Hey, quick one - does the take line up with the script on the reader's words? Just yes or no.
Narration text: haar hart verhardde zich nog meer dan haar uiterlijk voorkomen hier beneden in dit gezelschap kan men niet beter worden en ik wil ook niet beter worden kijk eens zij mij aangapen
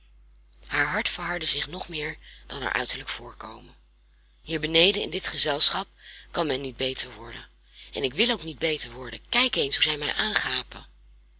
yes